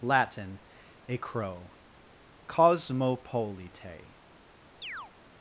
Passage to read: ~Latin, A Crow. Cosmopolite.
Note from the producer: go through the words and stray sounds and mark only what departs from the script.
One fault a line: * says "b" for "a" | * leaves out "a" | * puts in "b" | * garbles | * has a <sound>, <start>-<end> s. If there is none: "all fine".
* has a chirp, 4.8-5.1 s